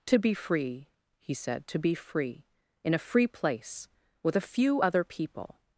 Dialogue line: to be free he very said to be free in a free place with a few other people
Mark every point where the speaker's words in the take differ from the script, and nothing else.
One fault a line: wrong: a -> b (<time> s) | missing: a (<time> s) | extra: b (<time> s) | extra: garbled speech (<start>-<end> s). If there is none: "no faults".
missing: very (1.3 s)